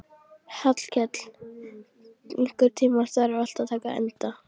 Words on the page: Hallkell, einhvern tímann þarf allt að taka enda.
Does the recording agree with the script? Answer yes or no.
yes